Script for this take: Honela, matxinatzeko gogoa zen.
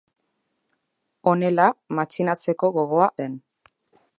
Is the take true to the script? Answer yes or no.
yes